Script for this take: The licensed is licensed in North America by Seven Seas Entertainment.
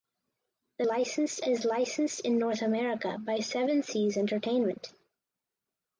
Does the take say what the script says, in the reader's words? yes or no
yes